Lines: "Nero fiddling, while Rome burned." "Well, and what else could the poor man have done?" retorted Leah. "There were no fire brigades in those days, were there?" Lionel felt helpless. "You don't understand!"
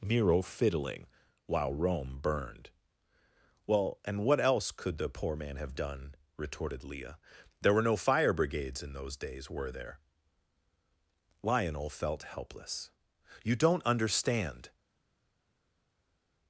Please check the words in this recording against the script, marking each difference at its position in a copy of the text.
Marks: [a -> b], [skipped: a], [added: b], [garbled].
"Nero fiddling, while Rome burned." "Well, and what else could the poor man have done?" retorted Leah. "There were no fire brigades in those days, were there?" Lionel felt helpless. "You don't understand!"